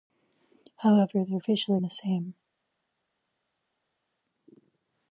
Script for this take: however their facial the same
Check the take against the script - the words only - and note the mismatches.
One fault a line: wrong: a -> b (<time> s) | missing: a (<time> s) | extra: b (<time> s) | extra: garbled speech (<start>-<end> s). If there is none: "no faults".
no faults